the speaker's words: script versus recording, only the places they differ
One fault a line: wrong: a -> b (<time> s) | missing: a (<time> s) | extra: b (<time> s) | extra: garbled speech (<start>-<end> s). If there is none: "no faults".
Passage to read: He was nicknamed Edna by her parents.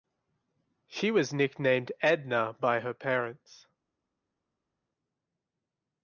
wrong: He -> She (0.9 s)